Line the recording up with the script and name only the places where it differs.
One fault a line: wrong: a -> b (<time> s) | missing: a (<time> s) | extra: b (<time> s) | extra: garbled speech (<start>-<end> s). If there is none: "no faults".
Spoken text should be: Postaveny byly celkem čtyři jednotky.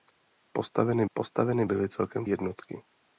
extra: postaveny (1.1 s)
missing: čtyři (2.3 s)